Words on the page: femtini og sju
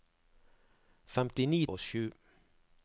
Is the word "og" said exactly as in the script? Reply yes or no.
yes